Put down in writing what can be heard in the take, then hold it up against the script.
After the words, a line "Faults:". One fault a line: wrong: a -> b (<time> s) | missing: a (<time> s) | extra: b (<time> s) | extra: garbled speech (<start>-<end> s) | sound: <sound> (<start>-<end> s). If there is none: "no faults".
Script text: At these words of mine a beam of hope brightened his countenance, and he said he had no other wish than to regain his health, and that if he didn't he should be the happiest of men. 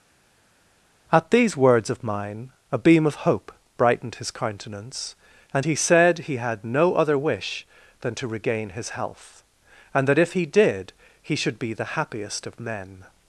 At these words of mine a beam of hope brightened his countenance, and he said he had no other wish than to regain his health, and that if he did he should be the happiest of men.
Faults:
wrong: didn't -> did (10.5 s)